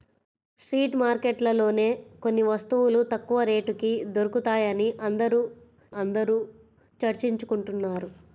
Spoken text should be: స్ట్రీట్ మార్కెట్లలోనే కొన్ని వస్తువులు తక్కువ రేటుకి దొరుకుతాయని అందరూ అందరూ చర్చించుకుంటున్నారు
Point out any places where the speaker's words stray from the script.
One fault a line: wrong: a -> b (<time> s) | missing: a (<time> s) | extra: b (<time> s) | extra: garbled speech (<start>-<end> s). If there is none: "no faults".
no faults